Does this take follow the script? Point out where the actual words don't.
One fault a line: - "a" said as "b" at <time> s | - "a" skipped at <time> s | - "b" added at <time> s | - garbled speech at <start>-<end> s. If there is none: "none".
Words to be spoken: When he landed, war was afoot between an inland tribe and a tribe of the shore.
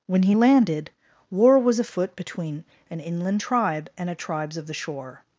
- "tribe" said as "tribes" at 4.1 s